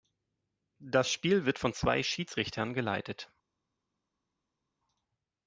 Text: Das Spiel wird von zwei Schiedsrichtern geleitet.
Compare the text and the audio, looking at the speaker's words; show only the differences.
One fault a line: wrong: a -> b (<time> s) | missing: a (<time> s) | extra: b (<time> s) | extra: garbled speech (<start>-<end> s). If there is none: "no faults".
no faults